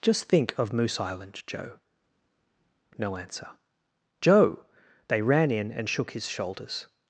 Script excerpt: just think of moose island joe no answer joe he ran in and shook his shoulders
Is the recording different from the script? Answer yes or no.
yes